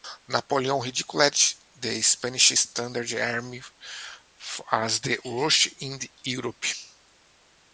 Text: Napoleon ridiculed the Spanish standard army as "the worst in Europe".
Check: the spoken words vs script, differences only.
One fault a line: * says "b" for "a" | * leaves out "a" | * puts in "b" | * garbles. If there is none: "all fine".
all fine